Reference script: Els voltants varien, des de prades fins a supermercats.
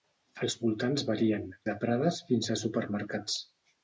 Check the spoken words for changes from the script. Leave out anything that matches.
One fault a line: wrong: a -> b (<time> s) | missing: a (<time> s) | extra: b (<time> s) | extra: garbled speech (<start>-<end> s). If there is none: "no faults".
missing: des (1.4 s)